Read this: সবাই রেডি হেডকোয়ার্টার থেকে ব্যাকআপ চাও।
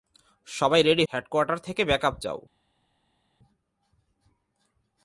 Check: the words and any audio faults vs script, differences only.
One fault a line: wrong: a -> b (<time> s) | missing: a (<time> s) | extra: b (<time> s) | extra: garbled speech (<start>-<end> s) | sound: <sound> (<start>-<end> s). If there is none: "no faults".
no faults